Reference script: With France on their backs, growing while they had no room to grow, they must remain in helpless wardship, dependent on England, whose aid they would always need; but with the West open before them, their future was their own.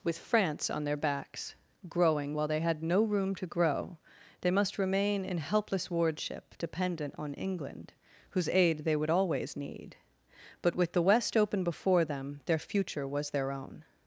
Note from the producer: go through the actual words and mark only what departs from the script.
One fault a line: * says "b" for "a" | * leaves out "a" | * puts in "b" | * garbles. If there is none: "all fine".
all fine